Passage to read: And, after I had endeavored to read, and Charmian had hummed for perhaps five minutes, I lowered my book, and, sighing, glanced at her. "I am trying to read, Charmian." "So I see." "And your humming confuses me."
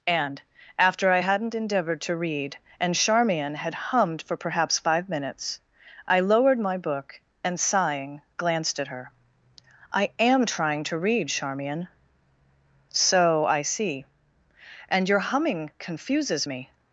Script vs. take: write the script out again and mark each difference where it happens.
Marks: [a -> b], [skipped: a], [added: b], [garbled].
And, after I [had -> hadn't] endeavored to read, and Charmian had hummed for perhaps five minutes, I lowered my book, and, sighing, glanced at her. "I am trying to read, Charmian." "So I see." "And your humming confuses me."